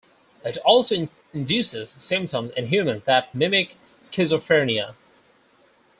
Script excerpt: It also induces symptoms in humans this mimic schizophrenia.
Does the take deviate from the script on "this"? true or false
true